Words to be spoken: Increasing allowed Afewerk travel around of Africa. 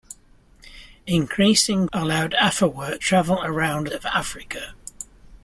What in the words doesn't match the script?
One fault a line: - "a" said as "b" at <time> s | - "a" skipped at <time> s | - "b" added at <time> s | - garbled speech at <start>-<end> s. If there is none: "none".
none